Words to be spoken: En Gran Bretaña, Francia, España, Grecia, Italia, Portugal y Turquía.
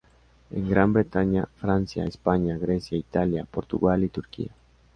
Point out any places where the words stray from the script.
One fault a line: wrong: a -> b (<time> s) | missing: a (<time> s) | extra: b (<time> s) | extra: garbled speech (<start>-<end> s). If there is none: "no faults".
no faults